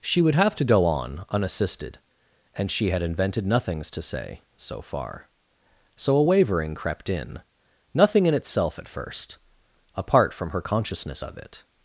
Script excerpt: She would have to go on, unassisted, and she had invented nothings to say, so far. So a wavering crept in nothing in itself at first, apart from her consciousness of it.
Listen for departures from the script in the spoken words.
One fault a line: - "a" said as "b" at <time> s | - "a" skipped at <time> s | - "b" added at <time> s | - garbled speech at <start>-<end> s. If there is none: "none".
none